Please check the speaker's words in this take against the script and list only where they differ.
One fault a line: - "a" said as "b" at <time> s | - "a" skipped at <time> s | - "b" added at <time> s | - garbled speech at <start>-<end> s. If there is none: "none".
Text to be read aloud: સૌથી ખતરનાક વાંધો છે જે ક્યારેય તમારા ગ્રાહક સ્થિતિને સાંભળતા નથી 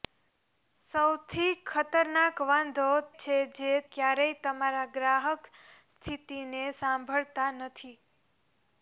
none